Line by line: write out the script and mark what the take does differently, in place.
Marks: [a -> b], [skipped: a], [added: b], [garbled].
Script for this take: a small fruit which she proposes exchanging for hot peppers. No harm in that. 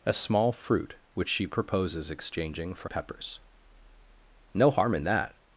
a small fruit which she proposes exchanging for [skipped: hot] peppers. No harm in that.